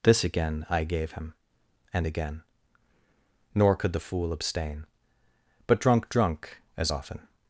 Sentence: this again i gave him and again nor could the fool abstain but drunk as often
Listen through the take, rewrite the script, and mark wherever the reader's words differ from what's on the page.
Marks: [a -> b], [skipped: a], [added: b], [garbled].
this again i gave him and again nor could the fool abstain but drunk [added: drunk] as often